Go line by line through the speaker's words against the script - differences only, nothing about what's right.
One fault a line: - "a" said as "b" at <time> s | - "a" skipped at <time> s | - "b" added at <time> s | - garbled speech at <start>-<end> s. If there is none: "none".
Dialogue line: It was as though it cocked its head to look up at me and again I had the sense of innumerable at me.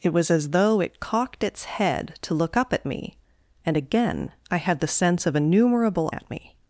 none